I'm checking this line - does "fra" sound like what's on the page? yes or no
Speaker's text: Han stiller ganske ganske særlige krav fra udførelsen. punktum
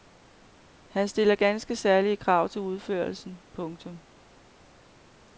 no